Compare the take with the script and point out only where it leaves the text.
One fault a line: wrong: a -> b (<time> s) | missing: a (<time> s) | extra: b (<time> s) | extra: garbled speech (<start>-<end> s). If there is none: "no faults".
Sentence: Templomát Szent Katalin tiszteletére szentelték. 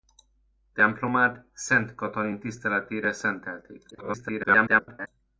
extra: garbled speech (3.9-5.1 s)